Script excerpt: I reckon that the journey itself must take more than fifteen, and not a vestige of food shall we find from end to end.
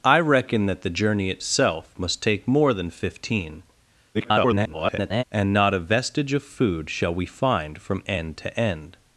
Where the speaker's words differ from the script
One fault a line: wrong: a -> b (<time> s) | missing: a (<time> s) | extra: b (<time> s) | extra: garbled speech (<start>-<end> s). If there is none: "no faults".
extra: garbled speech (4.1-5.2 s)